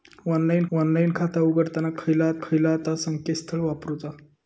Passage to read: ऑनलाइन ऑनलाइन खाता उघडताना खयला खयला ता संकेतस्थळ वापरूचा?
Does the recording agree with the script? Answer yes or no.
yes